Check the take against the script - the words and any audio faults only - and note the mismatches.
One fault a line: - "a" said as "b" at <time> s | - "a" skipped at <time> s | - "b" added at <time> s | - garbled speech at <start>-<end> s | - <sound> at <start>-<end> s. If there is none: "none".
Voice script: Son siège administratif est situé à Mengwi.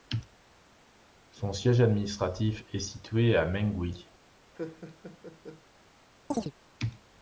- laugh at 4.5-5.6 s
- chirp at 6.3-6.5 s